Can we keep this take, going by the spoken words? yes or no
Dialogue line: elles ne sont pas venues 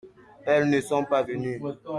yes